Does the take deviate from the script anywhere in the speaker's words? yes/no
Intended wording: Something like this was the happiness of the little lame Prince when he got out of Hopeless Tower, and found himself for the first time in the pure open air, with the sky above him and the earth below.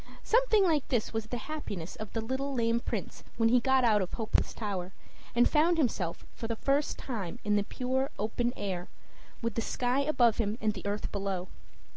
no